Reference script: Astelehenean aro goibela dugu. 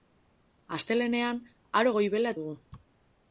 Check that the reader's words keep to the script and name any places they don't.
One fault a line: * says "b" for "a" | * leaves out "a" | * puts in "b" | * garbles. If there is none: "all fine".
all fine